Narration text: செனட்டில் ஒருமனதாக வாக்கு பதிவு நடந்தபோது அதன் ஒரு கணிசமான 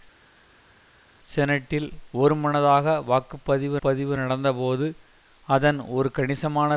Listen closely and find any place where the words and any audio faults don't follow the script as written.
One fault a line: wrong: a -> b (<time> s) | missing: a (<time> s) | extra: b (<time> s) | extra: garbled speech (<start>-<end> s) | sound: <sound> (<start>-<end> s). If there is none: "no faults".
extra: பதிவு (3.8 s)